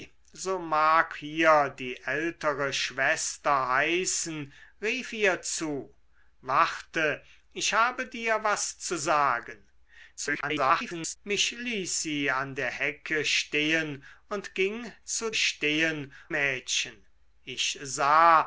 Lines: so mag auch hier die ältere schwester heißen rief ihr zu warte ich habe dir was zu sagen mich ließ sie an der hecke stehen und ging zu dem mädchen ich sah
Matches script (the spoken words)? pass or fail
fail